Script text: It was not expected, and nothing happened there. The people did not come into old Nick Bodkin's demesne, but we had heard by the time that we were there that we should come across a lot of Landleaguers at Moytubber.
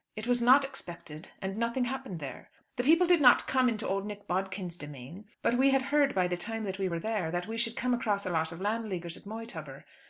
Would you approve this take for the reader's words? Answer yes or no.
yes